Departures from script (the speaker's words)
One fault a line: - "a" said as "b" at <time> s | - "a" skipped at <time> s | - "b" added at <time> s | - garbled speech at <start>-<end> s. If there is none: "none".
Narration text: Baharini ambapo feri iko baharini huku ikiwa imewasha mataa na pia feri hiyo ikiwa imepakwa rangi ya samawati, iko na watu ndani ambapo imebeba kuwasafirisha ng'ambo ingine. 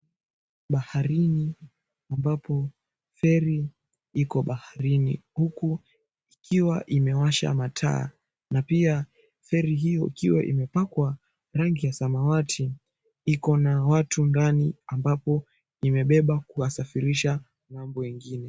none